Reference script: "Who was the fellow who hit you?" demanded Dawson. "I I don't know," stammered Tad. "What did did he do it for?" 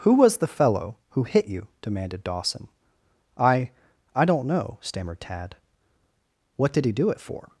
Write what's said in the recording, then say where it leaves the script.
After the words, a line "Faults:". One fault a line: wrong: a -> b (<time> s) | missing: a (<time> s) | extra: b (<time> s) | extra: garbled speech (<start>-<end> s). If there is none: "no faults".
"Who was the fellow who hit you?" demanded Dawson. "I I don't know," stammered Tad. "What did he do it for?"
Faults:
missing: did (6.8 s)